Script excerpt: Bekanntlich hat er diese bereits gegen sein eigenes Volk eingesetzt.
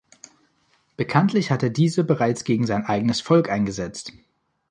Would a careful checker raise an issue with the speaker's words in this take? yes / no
no